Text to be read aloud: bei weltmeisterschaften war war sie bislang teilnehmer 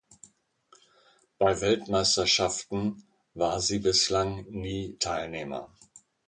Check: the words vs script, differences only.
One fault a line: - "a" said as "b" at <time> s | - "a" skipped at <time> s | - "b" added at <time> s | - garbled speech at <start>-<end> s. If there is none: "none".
- "war" skipped at 3.6 s
- "nie" added at 4.5 s